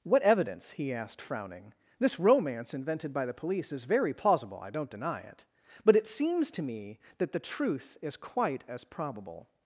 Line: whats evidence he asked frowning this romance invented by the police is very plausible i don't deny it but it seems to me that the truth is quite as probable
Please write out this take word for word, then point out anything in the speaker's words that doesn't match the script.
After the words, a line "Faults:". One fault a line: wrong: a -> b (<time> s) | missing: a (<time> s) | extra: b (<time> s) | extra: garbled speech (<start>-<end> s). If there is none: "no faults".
what evidence he asked frowning this romance invented by the police is very plausible i don't deny it but it seems to me that the truth is quite as probable
Faults:
wrong: whats -> what (0.0 s)